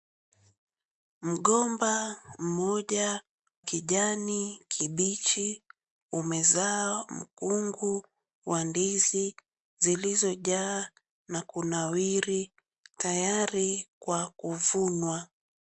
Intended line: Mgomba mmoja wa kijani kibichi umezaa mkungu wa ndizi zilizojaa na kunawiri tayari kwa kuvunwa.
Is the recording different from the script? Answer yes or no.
yes